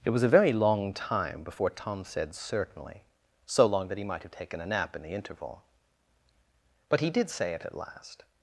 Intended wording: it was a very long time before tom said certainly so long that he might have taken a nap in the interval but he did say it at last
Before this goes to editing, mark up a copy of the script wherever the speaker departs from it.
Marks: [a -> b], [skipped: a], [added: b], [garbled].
it was a very long time before tom said certainly so long that he might have taken a nap in the interval but he did say it at last